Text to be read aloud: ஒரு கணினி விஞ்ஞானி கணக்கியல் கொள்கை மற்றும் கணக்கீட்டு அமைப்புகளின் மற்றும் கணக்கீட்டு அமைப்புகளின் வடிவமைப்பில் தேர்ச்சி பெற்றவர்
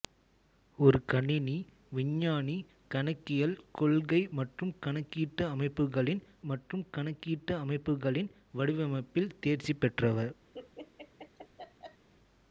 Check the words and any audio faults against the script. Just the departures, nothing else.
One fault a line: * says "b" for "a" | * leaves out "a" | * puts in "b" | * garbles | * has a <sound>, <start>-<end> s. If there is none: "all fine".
* has a laugh, 10.5-12.1 s